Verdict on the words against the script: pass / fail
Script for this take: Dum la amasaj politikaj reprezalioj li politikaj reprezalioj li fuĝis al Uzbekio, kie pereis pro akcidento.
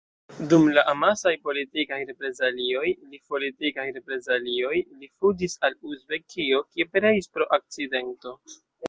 pass